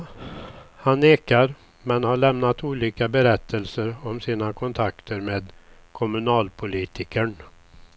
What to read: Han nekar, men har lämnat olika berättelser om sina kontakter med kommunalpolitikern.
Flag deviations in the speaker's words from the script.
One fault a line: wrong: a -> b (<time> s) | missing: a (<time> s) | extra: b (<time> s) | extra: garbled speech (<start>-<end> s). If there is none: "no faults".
no faults